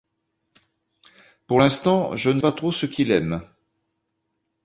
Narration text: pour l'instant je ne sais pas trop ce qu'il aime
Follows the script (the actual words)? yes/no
no